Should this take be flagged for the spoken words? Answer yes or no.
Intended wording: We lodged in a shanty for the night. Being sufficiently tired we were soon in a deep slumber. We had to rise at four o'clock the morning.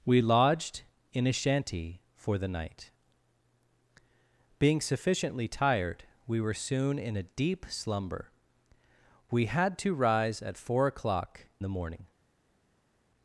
no